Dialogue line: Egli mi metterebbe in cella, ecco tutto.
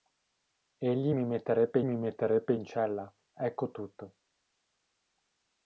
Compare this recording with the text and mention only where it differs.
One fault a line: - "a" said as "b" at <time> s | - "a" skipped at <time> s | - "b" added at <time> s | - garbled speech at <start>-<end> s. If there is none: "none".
- "mi metterebbe" added at 1.8 s